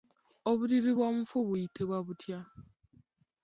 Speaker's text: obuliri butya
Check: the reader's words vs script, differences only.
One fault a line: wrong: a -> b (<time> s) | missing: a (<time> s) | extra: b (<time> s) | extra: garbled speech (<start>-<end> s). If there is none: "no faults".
extra: bw'omufu buyitibwa (1.0 s)